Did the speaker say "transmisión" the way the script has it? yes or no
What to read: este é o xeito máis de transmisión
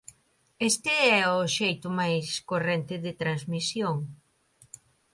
yes